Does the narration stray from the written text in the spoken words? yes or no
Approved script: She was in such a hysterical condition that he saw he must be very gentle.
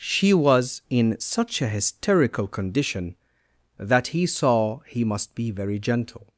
no